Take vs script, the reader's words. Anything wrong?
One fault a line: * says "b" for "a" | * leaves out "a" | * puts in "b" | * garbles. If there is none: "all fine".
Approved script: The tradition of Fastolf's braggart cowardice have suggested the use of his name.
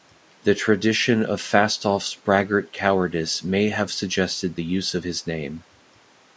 * puts in "may"